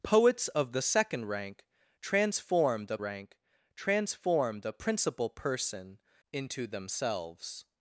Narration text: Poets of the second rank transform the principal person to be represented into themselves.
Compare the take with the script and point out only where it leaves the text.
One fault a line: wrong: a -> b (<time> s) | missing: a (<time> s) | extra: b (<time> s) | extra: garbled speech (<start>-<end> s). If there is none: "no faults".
wrong: principal person to be represented -> rank transform the principal person (3.0 s)